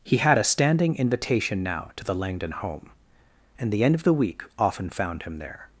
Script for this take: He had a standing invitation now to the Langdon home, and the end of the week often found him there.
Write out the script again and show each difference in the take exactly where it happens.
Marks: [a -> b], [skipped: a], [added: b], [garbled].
He had a standing invitation now to the Langdon home, and the end of the week often found him there.